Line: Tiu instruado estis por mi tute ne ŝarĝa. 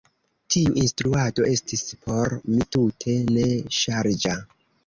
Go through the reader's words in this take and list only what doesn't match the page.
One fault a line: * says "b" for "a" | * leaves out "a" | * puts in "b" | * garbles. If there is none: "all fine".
all fine